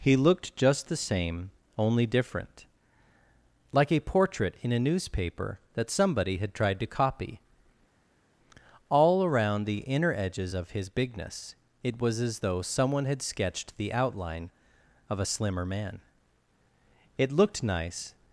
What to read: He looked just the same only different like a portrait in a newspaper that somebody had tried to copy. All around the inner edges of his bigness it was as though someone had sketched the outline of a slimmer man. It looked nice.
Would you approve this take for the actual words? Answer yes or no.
yes